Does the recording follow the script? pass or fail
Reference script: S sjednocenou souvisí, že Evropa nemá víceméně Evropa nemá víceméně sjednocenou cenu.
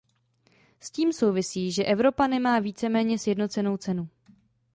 fail